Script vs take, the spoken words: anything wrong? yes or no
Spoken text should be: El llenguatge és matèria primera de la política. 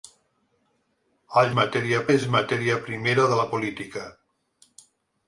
yes